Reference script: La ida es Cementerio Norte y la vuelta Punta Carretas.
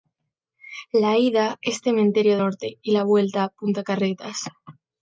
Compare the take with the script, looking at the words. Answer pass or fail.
pass